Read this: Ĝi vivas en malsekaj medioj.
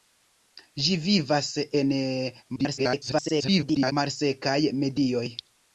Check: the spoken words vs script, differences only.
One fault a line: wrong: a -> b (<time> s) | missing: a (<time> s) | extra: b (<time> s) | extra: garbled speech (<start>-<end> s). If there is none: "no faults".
extra: garbled speech (2.6-3.9 s)